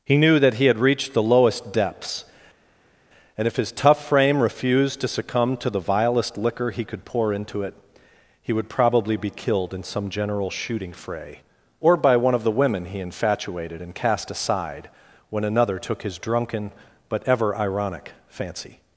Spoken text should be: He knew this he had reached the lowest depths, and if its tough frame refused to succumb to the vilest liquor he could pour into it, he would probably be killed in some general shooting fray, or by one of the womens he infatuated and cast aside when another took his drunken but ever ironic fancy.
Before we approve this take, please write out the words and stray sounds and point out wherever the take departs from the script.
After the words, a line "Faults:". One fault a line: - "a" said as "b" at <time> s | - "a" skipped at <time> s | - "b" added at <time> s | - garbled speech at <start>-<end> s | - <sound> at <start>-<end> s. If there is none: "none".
He knew that he had reached the lowest depths, and if his tough frame refused to succumb to the vilest liquor he could pour into it, he would probably be killed in some general shooting fray, or by one of the women he infatuated and cast aside when another took his drunken but ever ironic fancy.
Faults:
- "this" said as "that" at 0.4 s
- "its" said as "his" at 3.6 s
- "womens" said as "women" at 12.5 s